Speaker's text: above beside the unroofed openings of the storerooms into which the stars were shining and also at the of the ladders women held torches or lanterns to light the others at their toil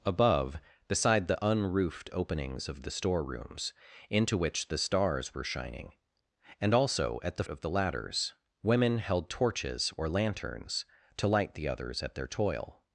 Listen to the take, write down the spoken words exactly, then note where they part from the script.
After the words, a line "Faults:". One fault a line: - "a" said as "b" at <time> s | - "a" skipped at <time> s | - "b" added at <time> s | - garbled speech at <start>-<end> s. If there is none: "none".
above beside the unroofed openings of the storerooms into which the stars were shining and also at the of the ladders women held torches or lanterns to light the others at their toil
Faults:
none